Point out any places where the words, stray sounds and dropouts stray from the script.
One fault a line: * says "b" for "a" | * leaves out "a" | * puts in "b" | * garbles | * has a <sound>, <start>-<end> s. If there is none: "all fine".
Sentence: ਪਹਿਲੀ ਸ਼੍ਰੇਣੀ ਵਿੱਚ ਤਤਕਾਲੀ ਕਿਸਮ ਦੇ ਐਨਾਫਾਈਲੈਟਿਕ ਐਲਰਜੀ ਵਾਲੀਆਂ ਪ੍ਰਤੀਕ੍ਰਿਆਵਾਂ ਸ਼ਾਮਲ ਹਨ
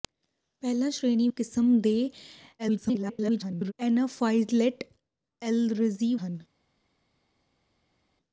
* leaves out "ਵਿੱਚ ਤਤਕਾਲੀ"
* garbles
* leaves out "ਵਾਲੀਆਂ ਪ੍ਰਤੀਕ੍ਰਿਆਵਾਂ ਸ਼ਾਮਲ"